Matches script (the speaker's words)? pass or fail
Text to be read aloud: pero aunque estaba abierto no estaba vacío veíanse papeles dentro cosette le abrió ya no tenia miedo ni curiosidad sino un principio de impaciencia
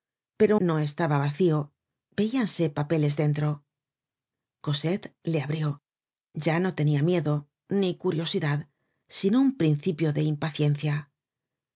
fail